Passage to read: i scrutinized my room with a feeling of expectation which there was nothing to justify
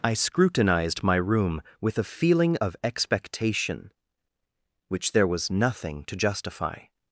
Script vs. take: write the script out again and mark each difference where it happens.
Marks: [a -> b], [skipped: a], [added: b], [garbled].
i scrutinized my room with a feeling of expectation which there was nothing to justify